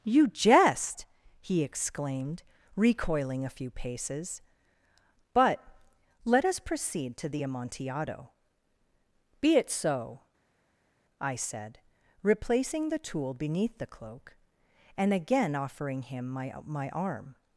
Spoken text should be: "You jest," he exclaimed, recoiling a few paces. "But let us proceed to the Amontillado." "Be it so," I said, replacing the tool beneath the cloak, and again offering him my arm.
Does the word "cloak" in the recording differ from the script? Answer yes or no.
no